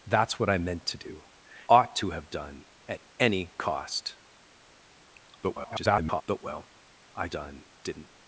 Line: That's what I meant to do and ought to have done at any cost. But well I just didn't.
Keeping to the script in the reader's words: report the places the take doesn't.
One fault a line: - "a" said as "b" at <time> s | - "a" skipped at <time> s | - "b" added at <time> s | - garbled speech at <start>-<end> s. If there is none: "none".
- "and" skipped at 1.2 s
- garbled speech at 5.4-6.2 s
- "just" said as "done" at 7.3 s